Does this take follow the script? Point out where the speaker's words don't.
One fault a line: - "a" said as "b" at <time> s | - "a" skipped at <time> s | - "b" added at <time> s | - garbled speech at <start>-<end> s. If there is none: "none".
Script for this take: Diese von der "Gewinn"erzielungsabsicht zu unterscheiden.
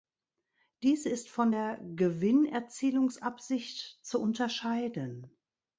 - "ist" added at 1.1 s